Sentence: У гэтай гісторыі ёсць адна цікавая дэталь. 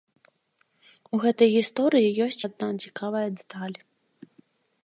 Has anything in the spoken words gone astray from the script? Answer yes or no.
no